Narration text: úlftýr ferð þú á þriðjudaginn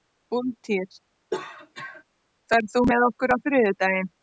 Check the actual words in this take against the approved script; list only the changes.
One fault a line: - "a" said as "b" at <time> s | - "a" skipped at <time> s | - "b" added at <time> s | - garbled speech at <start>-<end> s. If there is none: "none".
- "með okkur" added at 2.9 s